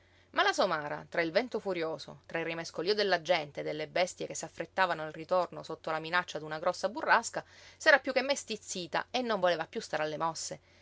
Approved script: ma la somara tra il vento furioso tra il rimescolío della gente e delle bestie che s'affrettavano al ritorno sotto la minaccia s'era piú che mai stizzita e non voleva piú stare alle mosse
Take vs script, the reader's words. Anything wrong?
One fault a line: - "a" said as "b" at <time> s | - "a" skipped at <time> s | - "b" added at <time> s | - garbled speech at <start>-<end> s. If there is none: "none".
- "d'una grossa burrasca" added at 6.4 s